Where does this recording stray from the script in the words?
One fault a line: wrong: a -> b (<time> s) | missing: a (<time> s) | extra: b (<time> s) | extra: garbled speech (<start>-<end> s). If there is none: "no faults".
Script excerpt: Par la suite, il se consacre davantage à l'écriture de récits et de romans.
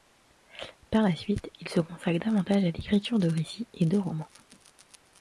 no faults